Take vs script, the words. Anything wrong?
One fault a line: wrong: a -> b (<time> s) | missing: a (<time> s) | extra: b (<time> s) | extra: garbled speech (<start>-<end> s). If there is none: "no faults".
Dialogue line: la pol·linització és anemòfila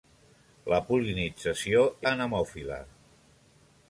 missing: és (1.8 s)